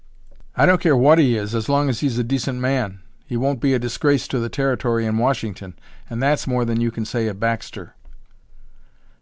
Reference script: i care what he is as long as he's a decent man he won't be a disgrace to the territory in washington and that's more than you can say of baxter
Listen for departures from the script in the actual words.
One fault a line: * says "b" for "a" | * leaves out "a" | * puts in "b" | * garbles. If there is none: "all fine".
* puts in "don't"